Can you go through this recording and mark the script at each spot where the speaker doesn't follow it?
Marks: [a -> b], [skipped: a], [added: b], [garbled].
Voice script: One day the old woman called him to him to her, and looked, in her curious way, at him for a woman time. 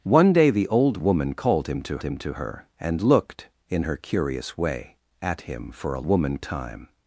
One day the old woman called him to him to her, and looked, in her curious way, at him for a woman time.